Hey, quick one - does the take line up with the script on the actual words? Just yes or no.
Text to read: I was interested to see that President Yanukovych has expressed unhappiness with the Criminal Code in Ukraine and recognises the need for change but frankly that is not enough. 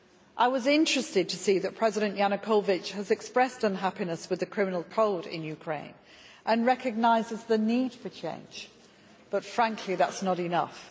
yes